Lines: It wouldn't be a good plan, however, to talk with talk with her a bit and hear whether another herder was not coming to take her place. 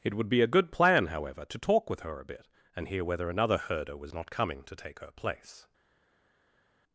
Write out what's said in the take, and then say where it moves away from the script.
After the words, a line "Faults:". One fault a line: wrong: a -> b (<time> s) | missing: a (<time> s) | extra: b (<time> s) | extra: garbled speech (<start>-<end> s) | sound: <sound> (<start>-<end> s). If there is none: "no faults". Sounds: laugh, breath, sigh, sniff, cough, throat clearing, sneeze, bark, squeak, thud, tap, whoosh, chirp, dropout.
It would be a good plan, however, to talk with her a bit and hear whether another herder was not coming to take her place.
Faults:
wrong: wouldn't -> would (0.1 s)
missing: talk with (2.0 s)